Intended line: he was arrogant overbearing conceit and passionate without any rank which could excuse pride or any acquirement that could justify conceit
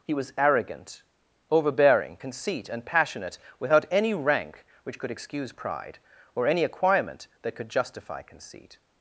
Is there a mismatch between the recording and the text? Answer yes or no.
no